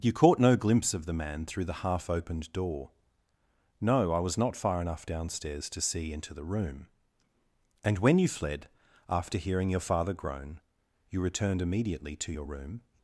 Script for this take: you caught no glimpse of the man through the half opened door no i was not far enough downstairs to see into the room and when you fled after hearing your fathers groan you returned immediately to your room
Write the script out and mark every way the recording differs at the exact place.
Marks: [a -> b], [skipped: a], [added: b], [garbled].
you caught no glimpse of the man through the half opened door no i was not far enough downstairs to see into the room and when you fled after hearing your [fathers -> father] groan you returned immediately to your room